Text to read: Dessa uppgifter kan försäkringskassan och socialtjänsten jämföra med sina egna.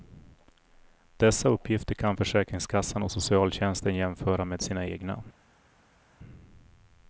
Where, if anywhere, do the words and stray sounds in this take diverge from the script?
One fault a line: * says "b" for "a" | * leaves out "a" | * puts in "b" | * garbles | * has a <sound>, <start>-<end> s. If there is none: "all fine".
all fine